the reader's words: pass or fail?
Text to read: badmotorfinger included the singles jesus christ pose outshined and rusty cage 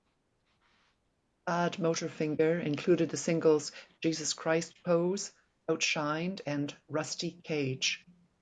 pass